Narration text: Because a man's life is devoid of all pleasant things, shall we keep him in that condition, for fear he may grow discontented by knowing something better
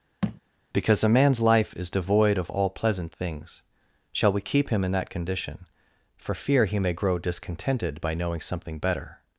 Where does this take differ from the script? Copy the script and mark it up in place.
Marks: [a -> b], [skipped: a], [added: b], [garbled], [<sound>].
[thud] Because a man's life is devoid of all pleasant things, shall we keep him in that condition, for fear he may grow discontented by knowing something better